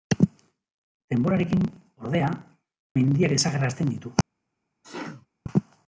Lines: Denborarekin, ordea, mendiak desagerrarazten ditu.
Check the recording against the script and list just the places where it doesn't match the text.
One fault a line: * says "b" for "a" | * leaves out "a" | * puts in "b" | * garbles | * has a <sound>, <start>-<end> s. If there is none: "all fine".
* has a sneeze, 4.8-5.3 s